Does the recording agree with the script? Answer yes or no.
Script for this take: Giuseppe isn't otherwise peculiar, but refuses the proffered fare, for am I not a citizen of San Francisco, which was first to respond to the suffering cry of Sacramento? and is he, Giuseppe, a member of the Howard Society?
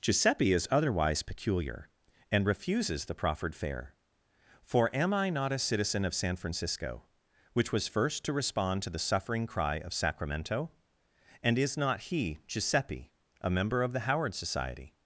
no